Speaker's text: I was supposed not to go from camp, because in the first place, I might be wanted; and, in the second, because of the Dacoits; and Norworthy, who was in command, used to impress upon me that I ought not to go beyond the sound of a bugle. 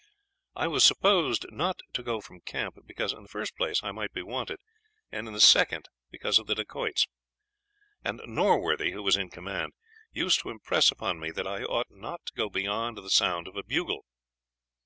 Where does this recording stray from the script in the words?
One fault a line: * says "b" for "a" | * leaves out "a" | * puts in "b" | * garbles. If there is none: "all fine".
all fine